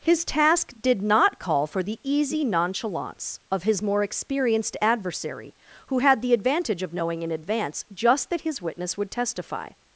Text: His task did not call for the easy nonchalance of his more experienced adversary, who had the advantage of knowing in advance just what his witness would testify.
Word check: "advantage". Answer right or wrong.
right